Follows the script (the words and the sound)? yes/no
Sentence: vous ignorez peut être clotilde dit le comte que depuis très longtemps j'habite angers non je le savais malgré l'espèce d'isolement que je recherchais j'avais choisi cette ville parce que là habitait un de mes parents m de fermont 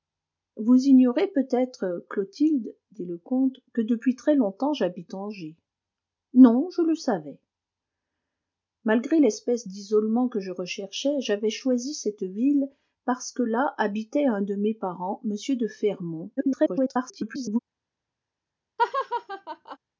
no